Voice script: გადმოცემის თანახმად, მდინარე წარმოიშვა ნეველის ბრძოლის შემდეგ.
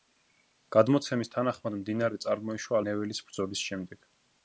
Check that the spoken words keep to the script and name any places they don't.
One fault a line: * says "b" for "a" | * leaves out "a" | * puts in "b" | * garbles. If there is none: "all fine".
all fine